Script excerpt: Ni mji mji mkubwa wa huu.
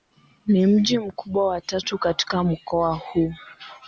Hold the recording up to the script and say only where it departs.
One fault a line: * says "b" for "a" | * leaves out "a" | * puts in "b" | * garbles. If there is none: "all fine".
* leaves out "mji"
* puts in "tatu katika mkoa"